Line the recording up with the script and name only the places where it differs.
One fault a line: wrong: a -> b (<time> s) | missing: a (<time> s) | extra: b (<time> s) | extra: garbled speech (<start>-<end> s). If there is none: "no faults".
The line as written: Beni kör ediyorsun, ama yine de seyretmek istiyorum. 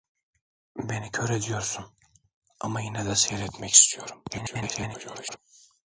extra: garbled speech (4.3-5.4 s)